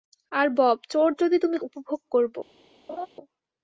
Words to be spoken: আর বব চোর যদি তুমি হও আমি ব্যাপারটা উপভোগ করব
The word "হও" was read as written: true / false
false